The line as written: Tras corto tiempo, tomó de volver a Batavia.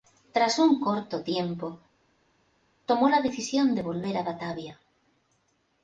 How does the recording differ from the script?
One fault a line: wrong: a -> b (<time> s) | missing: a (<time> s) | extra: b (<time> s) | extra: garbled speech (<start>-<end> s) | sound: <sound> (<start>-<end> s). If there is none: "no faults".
extra: un (0.6 s)
extra: la decisión (3.1 s)